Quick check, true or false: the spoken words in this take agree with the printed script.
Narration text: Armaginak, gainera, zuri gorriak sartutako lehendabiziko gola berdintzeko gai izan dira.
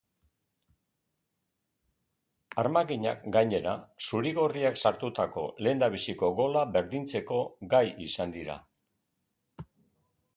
true